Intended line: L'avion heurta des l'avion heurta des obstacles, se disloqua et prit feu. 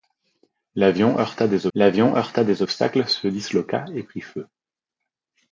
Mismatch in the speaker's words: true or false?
false